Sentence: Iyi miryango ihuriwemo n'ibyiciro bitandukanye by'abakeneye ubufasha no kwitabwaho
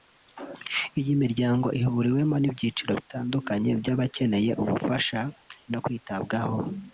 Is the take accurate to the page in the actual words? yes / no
yes